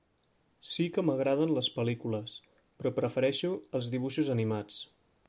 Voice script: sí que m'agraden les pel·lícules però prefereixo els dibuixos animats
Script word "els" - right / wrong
right